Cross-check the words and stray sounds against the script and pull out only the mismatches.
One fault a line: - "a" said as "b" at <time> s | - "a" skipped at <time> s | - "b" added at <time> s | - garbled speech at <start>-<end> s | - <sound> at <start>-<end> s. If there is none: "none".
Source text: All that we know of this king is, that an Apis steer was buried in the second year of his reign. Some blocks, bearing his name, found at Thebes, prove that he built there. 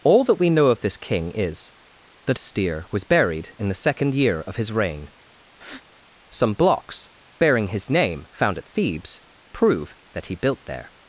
- "an Apis" skipped at 2.4 s
- breath at 5.5-5.8 s